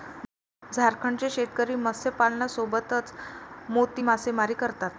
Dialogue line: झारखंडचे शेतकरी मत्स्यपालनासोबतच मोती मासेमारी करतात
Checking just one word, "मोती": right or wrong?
right